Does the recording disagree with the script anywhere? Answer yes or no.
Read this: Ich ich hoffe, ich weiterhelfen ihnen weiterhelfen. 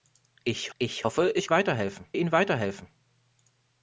no